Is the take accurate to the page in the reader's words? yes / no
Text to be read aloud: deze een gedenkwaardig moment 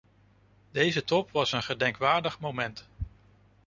no